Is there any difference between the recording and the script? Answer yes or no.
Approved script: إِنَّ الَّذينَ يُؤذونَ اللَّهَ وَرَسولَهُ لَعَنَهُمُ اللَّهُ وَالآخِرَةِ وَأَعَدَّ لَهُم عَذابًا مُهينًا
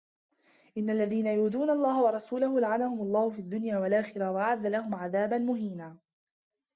yes